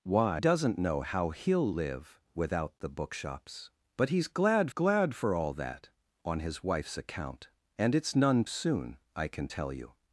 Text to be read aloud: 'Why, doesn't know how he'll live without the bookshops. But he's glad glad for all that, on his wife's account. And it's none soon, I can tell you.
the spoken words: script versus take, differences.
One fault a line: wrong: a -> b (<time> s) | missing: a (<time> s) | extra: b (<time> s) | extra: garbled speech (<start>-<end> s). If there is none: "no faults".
no faults